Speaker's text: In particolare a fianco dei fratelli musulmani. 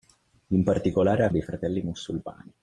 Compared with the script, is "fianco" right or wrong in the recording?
wrong